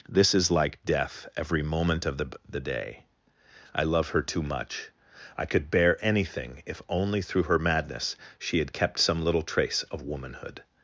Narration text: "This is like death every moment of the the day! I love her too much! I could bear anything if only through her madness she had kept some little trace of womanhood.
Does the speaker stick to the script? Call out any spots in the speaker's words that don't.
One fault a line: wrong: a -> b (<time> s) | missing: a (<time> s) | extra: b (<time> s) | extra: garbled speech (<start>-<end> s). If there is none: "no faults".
no faults